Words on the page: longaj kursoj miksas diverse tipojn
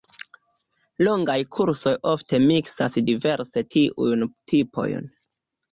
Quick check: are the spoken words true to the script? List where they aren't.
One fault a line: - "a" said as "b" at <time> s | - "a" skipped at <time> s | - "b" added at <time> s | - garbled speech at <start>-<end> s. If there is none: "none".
- "ofte" added at 2.1 s
- "tiujn" added at 3.8 s